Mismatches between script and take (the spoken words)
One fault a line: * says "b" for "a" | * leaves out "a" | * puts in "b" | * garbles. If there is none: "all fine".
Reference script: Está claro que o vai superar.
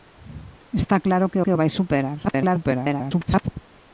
* puts in "que"
* garbles